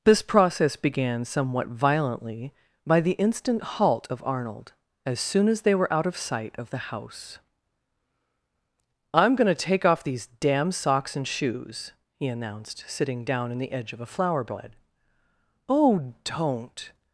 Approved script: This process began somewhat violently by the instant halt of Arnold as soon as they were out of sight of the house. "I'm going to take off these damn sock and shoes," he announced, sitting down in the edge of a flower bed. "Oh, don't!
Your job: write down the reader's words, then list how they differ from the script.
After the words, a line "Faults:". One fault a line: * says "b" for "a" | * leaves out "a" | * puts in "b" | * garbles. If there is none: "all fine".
This process began somewhat violently by the instant halt of Arnold as soon as they were out of sight of the house. "I'm going to take off these damn socks and shoes," he announced, sitting down in the edge of a flower bed. "Oh, don't!
Faults:
* says "socks" for "sock"